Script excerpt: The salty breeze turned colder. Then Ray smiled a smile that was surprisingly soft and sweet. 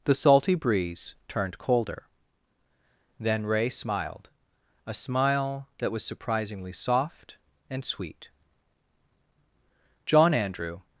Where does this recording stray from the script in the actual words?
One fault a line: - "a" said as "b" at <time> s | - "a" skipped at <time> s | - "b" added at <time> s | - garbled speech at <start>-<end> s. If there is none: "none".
- "John Andrew" added at 10.1 s